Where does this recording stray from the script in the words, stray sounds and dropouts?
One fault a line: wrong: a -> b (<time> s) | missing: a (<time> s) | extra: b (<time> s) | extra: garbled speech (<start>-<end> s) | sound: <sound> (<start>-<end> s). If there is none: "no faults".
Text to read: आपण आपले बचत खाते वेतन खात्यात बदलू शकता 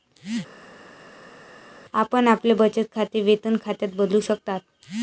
no faults